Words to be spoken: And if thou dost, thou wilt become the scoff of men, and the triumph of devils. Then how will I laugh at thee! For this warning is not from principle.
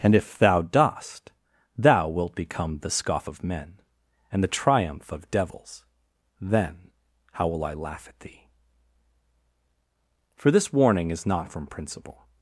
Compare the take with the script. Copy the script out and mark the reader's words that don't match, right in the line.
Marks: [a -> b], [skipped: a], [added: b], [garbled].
And if thou dost, thou wilt become the scoff of men, and the triumph of devils. Then how will I laugh at thee! For this warning is not from principle.